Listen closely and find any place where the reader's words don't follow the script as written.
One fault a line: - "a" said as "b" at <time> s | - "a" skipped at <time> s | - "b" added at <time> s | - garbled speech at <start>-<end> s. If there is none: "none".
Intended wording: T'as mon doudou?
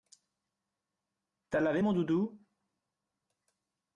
- "lavé" added at 1.6 s